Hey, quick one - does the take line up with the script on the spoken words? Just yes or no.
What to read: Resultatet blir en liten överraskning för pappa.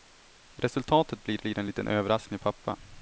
no